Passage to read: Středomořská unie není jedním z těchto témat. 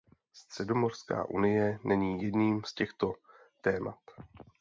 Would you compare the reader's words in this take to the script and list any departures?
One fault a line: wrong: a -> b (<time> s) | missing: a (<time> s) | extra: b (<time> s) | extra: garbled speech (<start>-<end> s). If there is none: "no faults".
no faults